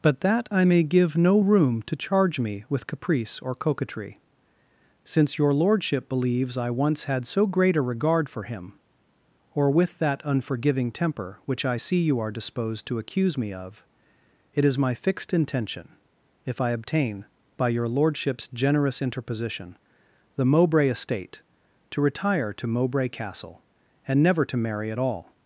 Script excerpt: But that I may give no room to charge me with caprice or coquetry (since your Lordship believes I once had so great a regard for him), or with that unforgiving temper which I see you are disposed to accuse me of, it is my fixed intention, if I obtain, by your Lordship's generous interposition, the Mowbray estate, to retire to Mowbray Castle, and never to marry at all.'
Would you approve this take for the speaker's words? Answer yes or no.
yes